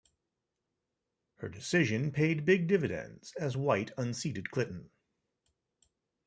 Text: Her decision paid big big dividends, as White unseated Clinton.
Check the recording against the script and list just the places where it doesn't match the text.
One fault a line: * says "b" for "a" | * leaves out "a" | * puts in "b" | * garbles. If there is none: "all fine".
* leaves out "big"